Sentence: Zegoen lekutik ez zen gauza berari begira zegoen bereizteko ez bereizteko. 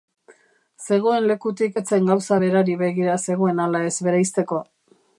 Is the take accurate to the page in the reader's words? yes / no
no